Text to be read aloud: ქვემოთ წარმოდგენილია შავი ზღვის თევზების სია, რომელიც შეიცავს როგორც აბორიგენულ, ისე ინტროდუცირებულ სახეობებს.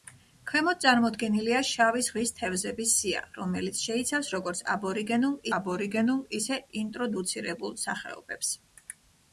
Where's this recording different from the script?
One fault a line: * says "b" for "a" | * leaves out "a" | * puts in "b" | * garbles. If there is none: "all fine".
* puts in "აბორიგენულ"